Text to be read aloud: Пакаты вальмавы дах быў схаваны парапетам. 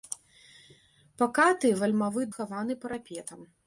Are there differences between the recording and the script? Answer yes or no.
yes